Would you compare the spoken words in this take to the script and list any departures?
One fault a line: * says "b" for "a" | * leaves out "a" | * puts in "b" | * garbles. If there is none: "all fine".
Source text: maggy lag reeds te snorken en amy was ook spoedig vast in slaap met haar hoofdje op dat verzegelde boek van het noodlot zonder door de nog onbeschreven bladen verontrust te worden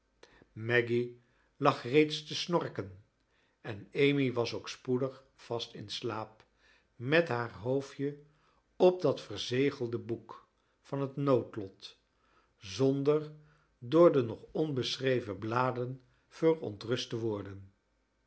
all fine